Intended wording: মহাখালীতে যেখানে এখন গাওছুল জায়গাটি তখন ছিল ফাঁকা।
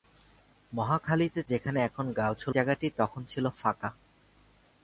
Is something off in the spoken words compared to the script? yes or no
no